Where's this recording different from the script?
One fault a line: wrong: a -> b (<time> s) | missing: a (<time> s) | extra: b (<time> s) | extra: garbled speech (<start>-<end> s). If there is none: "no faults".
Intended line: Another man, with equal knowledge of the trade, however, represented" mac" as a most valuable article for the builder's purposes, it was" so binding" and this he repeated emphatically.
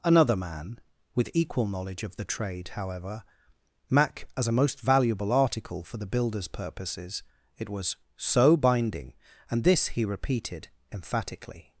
missing: represented (3.2 s)